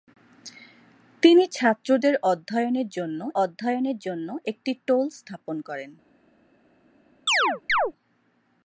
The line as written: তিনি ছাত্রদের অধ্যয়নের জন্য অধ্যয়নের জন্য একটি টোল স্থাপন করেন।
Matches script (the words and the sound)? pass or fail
fail